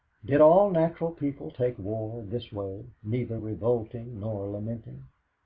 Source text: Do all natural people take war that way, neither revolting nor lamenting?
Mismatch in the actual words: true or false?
true